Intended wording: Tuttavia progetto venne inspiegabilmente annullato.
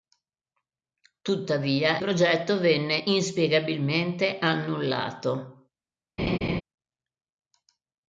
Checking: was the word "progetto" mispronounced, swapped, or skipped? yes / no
no